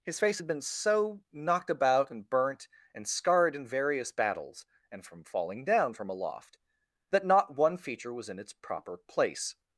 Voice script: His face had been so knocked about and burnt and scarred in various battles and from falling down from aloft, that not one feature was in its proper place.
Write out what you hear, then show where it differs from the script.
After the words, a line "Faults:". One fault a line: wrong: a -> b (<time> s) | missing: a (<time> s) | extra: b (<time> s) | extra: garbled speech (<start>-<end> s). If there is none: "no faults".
His face had been so knocked about and burnt and scarred in various battles and from falling down from aloft, that not one feature was in its proper place.
Faults:
no faults